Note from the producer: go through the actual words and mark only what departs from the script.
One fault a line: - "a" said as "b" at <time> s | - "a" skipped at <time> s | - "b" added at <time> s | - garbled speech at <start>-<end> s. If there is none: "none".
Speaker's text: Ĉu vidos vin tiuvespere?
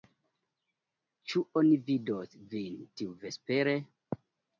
- "oni" added at 1.6 s